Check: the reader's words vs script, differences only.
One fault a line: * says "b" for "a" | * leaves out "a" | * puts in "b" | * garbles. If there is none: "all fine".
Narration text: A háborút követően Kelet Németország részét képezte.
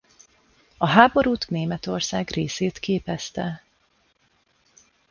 * leaves out "követően Kelet"